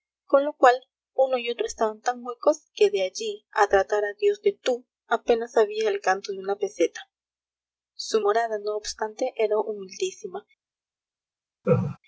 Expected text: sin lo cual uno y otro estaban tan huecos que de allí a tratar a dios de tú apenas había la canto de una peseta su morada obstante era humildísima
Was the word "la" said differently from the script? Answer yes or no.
yes